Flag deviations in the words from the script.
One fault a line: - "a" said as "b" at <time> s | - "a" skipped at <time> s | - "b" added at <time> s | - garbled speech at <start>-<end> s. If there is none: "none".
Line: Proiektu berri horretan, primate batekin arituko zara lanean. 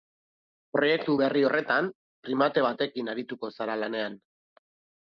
none